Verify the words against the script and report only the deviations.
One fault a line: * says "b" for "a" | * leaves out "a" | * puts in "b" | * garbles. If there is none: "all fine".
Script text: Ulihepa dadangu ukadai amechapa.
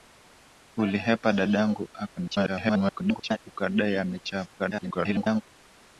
* garbles
* garbles